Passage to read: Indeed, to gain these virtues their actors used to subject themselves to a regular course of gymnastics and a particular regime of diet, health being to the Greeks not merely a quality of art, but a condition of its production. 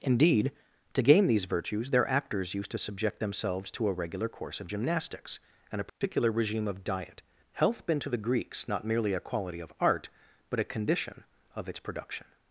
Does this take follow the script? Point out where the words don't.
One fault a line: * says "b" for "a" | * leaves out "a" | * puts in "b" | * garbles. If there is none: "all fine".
* says "been" for "being"